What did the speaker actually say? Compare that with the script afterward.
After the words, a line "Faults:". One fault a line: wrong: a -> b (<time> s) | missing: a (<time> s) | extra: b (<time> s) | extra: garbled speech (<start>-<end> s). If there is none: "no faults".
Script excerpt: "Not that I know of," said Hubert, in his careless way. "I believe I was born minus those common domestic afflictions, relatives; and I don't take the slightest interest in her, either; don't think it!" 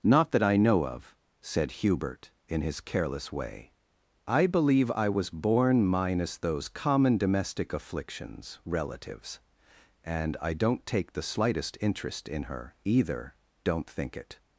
"Not that I know of," said Hubert, in his careless way. "I believe I was born minus those common domestic afflictions, relatives; and I don't take the slightest interest in her, either; don't think it!"
Faults:
no faults